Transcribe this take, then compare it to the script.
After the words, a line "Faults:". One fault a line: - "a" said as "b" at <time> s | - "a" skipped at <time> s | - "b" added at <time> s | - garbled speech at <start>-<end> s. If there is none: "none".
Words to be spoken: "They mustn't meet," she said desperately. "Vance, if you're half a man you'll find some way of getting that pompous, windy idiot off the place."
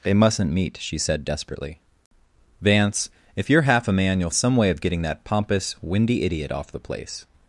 "They mustn't meet," she said desperately. "Vance, if you're half a man you'll some way of getting that pompous, windy idiot off the place."
Faults:
- "find" skipped at 4.3 s